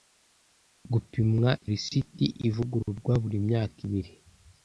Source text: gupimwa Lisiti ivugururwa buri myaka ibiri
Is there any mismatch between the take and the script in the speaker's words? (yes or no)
no